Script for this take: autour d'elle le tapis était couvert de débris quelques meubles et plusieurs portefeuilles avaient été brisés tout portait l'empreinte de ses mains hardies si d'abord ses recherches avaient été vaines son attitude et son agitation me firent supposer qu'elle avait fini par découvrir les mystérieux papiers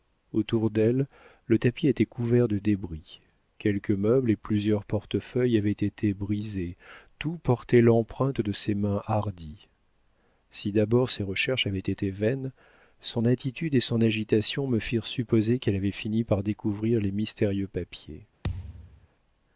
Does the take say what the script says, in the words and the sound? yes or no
no